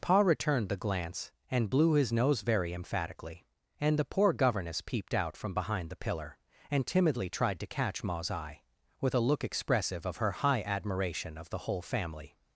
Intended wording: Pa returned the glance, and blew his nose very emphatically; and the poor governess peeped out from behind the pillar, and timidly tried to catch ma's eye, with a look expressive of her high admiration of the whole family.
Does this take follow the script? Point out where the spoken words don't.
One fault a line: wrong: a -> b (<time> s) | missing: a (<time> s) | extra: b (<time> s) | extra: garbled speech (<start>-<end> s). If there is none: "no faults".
no faults